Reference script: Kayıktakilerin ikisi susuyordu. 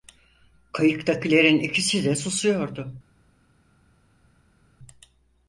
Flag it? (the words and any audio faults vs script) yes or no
yes